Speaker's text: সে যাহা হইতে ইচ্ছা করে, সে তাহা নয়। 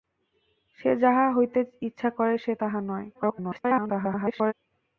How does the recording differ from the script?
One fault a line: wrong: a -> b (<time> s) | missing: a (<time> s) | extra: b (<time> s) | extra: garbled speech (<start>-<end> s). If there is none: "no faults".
extra: garbled speech (3.1-4.5 s)